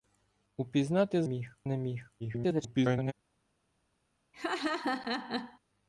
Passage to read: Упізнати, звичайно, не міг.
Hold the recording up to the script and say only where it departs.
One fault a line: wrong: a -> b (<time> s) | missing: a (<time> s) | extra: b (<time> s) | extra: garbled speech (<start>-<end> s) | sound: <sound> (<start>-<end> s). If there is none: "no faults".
wrong: звичайно -> міг (1.2 s)
extra: garbled speech (2.2-3.1 s)
sound: laugh (4.3-5.6 s)